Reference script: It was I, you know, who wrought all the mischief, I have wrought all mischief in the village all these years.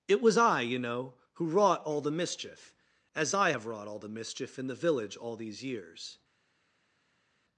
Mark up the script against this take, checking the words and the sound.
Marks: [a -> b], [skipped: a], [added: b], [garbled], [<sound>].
It was I, you know, who wrought all the mischief, [added: as] I have wrought all [added: the] mischief in the village all these years.